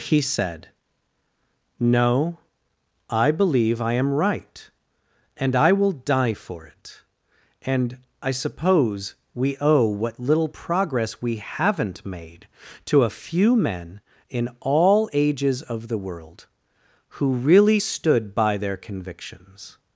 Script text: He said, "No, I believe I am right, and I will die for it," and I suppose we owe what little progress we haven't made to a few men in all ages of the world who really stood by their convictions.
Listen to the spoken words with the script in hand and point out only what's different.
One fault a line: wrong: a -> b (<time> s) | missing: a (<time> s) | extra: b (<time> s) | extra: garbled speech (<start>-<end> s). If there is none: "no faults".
no faults